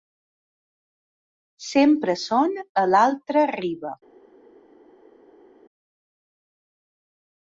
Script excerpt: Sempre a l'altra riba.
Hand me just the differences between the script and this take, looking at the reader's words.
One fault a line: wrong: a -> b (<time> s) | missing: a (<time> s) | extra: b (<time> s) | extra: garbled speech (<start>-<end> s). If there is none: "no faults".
extra: són (2.2 s)